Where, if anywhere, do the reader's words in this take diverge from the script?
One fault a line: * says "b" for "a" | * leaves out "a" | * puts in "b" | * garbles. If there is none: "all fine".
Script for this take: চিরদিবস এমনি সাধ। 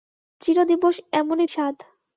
all fine